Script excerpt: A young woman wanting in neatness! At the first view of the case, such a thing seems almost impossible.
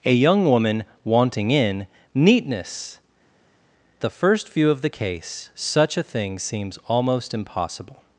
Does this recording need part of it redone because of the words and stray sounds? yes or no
yes